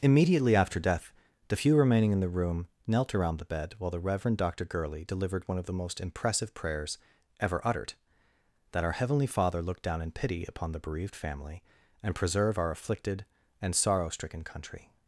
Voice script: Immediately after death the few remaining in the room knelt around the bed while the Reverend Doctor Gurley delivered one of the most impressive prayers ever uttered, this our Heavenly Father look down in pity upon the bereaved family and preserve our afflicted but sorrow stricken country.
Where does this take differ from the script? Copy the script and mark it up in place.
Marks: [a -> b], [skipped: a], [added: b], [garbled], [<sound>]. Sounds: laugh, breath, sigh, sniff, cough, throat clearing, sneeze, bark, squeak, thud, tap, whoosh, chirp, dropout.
Immediately after death the few remaining in the room knelt around the bed while the Reverend Doctor Gurley delivered one of the most impressive prayers ever uttered, [this -> that] our Heavenly Father look down in pity upon the bereaved family and preserve our afflicted [but -> and] sorrow stricken country.